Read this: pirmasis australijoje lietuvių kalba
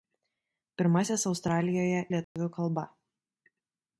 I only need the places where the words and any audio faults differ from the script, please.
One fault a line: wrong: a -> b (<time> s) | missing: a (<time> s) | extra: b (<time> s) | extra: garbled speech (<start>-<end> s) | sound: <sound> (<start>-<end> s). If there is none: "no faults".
sound: dropout (2.2-2.4 s)